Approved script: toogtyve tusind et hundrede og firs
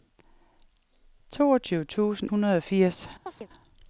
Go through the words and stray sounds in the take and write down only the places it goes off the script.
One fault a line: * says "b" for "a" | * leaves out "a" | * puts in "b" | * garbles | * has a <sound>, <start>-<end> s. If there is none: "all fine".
* leaves out "et"
* has a chirp, 3.3-3.5 s